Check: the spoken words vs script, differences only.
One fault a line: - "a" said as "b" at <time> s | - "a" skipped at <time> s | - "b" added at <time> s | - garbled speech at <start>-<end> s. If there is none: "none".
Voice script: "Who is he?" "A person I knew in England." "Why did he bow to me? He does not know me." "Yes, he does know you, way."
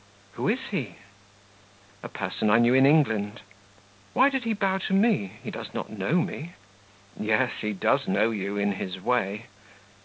- "in his" added at 8.6 s